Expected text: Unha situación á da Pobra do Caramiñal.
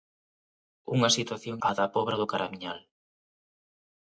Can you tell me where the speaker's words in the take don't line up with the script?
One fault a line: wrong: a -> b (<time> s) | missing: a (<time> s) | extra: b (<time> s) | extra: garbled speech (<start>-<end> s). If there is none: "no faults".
no faults